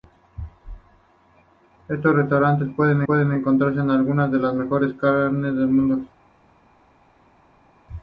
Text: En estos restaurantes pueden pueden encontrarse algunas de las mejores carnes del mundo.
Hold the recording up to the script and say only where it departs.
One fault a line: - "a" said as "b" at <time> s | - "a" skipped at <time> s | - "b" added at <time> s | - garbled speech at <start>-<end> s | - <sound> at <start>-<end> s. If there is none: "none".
none